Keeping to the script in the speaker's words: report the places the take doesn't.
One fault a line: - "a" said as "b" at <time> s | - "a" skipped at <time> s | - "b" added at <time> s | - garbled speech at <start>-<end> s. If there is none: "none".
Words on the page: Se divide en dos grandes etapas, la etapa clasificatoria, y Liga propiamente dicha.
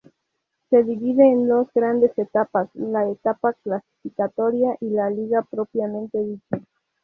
- "la" added at 4.9 s